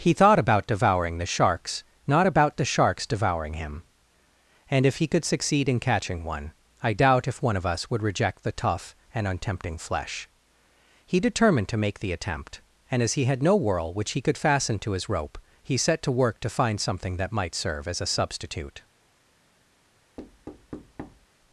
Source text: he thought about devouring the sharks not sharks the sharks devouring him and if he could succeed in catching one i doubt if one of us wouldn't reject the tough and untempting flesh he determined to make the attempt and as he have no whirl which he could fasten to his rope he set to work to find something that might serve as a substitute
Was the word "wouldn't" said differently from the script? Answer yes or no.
yes